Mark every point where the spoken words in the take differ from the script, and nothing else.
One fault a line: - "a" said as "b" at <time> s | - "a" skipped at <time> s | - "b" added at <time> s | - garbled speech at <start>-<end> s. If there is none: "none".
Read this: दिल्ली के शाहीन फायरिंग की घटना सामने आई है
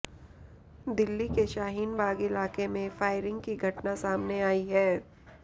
- "बाग इलाके में" added at 2.0 s